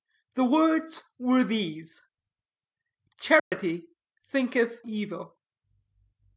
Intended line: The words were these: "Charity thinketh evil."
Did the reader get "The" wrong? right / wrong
right